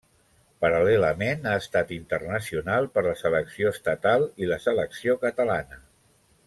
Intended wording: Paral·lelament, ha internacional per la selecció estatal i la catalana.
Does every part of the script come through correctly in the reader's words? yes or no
no